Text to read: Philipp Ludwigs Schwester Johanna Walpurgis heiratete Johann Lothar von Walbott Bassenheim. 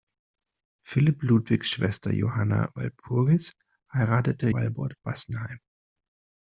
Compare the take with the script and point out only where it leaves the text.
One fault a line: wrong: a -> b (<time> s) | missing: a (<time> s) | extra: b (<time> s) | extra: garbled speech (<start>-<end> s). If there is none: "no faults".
missing: Johann Lothar von (4.5 s)